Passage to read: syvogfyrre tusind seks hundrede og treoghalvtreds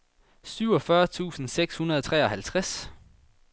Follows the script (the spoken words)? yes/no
yes